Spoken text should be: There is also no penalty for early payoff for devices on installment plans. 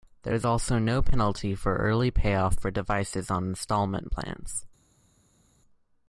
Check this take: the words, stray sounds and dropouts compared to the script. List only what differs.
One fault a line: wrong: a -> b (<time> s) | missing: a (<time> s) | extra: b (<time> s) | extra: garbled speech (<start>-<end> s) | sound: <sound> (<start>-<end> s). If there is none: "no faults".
no faults